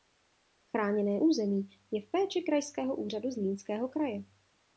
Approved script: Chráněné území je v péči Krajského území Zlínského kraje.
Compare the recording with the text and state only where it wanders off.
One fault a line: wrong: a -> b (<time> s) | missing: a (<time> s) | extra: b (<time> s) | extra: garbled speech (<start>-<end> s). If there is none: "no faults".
wrong: území -> úřadu (3.0 s)